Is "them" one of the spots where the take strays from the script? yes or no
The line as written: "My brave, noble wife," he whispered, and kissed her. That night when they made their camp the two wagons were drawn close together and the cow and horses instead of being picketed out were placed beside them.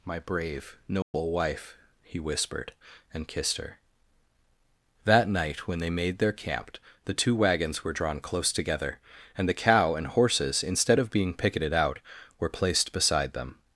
no